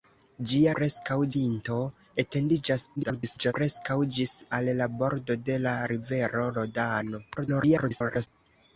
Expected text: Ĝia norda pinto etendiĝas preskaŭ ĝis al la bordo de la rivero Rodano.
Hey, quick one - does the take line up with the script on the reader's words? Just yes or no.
no